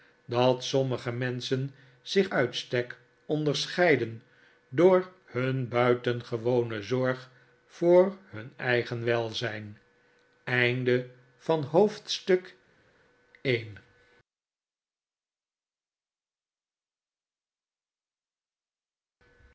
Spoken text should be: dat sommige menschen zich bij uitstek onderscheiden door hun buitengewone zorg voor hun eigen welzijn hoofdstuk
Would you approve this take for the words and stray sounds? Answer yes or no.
no